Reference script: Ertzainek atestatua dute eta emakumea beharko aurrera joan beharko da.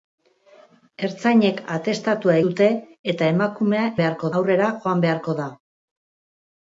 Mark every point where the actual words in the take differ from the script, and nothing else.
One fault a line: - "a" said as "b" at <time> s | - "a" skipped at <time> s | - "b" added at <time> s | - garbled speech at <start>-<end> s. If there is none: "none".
none